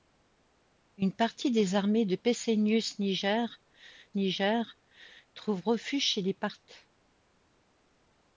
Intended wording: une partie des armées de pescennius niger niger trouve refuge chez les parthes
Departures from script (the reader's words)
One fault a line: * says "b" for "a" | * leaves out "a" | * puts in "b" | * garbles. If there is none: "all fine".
all fine